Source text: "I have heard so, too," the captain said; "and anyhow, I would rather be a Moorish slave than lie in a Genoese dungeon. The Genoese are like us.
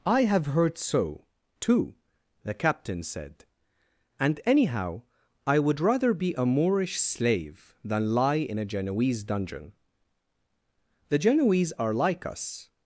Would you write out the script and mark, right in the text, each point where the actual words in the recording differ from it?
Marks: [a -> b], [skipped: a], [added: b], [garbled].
"I have heard so, too," the captain said; "and anyhow, I would rather be a Moorish slave than lie in a Genoese dungeon. The Genoese are like us.